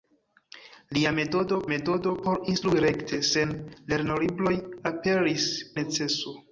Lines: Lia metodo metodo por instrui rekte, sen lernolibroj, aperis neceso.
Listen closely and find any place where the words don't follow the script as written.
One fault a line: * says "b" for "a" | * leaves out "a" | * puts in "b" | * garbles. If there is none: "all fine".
all fine